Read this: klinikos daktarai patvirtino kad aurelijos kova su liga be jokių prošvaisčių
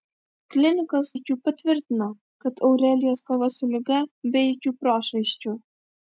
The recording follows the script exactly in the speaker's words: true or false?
false